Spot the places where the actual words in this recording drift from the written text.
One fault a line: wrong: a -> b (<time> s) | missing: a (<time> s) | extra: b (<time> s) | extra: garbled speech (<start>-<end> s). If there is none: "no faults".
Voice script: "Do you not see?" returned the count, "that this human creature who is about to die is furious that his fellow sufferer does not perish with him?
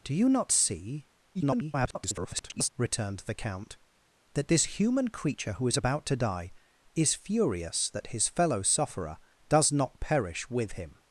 extra: garbled speech (1.3-2.7 s)